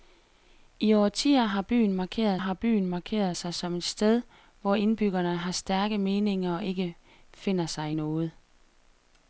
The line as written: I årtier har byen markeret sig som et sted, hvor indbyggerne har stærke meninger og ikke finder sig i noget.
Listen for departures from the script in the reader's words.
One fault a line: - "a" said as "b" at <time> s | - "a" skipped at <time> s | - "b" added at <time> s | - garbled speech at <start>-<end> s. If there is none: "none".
- "har byen markeret" added at 2.4 s